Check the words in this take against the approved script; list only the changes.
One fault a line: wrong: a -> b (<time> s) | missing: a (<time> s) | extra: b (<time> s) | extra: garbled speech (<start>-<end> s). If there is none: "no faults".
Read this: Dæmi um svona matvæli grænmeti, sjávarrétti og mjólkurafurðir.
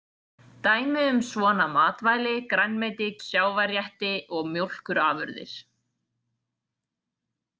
no faults